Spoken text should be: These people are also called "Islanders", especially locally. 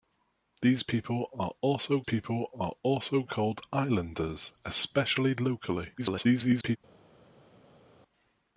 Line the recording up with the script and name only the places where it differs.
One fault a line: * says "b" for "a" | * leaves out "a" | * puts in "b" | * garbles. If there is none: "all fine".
* puts in "people are also"
* garbles